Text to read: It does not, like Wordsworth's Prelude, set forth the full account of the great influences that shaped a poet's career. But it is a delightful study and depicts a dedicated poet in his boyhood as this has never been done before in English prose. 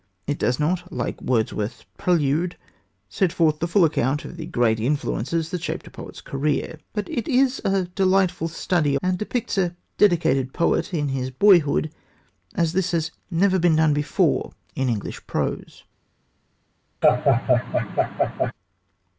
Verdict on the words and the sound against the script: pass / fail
fail